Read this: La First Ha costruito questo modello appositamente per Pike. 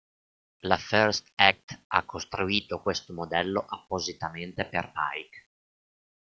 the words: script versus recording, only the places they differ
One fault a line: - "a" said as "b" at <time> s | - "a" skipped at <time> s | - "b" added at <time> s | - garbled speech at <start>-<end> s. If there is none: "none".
- "Act" added at 1.4 s